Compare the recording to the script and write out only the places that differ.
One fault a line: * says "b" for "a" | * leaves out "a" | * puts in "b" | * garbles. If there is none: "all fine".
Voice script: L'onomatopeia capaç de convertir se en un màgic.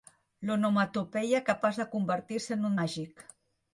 all fine